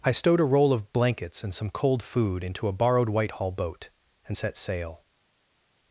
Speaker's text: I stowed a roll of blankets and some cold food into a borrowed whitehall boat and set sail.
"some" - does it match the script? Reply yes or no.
yes